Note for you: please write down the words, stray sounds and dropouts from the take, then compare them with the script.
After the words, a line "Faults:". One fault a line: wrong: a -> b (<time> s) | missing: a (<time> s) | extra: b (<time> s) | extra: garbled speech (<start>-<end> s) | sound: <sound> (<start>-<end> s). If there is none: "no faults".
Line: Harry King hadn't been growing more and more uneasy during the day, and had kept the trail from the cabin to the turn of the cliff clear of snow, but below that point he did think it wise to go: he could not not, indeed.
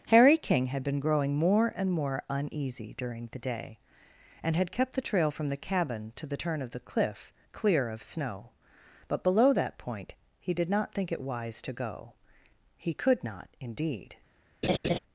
Harry King had been growing more and more uneasy during the day, and had kept the trail from the cabin to the turn of the cliff clear of snow, but below that point he did not think it wise to go: he could not, indeed.
Faults:
wrong: hadn't -> had (0.7 s)
extra: not (10.7 s)
missing: not (13.5 s)
sound: laugh (14.6-15.0 s)